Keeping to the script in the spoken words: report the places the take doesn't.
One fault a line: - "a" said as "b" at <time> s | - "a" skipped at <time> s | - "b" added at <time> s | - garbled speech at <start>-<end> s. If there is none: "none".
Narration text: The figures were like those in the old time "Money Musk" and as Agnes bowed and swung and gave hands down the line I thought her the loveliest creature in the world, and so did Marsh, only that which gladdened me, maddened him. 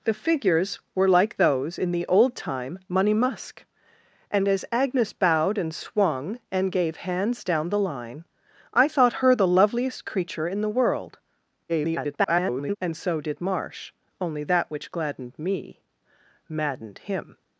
- garbled speech at 11.7-12.8 s